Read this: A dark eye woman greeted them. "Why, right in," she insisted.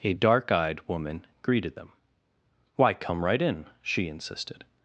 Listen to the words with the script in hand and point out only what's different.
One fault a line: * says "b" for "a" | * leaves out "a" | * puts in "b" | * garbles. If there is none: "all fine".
* says "eyed" for "eye"
* puts in "come"